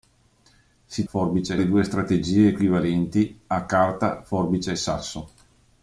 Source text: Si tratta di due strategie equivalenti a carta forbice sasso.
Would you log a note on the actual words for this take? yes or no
yes